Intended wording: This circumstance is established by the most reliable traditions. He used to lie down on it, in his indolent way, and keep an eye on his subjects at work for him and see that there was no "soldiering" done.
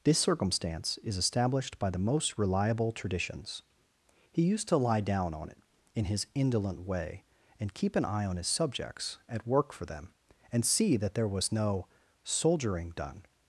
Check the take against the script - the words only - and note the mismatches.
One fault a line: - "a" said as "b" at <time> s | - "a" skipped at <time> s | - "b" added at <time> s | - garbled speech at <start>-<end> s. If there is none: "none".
- "him" said as "them" at 9.9 s